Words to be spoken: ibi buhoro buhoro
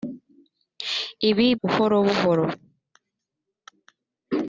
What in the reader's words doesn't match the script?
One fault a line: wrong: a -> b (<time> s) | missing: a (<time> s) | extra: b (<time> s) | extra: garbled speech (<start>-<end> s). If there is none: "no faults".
no faults